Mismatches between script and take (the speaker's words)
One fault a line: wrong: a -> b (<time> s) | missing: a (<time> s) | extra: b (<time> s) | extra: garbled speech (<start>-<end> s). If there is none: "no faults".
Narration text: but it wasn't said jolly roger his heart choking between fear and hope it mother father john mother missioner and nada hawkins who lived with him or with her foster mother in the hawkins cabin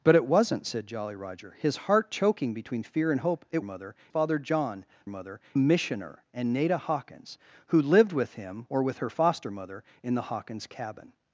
no faults